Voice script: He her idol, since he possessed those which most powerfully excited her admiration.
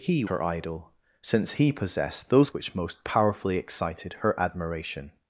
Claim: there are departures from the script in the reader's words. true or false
false